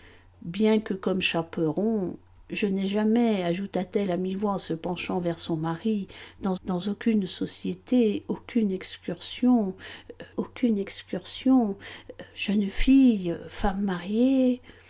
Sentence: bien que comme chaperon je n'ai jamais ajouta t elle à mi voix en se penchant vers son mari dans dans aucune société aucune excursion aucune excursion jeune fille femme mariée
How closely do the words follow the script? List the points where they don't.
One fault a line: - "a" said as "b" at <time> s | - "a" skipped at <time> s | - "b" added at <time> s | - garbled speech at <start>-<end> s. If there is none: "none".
none